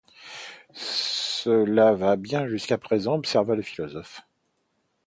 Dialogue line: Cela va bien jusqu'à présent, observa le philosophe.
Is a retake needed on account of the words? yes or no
no